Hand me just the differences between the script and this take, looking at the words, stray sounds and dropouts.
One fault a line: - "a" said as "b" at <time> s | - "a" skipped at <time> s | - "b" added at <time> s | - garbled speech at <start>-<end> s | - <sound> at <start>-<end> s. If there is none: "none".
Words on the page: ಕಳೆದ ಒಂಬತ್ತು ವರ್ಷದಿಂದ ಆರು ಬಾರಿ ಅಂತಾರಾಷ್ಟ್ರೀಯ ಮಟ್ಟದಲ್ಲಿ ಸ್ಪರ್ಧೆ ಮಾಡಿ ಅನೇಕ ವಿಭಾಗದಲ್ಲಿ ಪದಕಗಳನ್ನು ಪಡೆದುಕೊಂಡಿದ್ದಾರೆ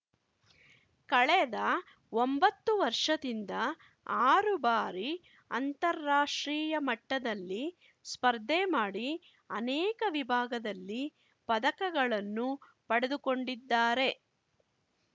none